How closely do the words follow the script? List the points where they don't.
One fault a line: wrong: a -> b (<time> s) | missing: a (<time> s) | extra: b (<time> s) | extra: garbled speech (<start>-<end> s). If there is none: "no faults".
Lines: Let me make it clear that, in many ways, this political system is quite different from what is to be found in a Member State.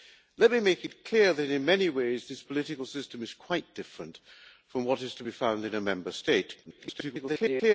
extra: garbled speech (6.6-7.7 s)